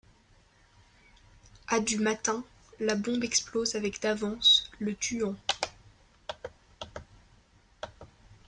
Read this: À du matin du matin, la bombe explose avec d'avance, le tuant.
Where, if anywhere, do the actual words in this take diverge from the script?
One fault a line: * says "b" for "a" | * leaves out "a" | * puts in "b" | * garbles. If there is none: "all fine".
* leaves out "du matin"